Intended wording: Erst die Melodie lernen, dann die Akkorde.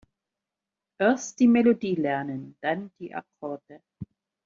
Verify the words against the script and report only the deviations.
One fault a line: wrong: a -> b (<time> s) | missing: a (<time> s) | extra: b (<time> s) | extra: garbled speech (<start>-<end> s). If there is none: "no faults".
no faults